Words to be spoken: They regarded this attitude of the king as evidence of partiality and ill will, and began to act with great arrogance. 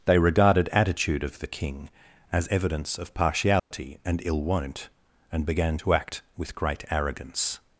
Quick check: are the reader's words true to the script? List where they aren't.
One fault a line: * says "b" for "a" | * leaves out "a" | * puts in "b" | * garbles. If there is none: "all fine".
* leaves out "this"
* says "won't" for "will"